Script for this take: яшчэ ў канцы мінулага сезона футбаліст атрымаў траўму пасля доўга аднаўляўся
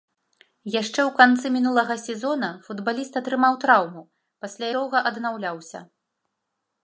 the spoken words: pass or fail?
pass